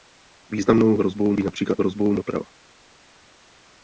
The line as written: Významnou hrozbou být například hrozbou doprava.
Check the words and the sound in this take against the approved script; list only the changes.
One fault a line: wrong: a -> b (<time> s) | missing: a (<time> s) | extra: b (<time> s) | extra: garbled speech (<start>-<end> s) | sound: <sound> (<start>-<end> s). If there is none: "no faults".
no faults